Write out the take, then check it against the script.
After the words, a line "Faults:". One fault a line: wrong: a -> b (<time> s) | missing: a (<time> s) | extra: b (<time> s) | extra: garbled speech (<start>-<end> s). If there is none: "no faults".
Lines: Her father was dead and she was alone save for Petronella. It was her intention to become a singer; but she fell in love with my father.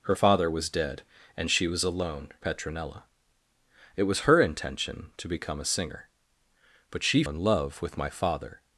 Her father was dead and she was alone Petronella. It was her intention to become a singer; but she in love with my father.
Faults:
missing: save for (2.3 s)
missing: fell (7.2 s)